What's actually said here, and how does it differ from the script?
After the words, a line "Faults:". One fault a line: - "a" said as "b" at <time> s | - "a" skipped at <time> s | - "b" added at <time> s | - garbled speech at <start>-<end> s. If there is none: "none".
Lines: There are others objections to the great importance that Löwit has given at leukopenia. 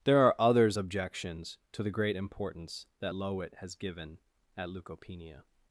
There are others objections to the great importance that Löwit has given at leukopenia.
Faults:
none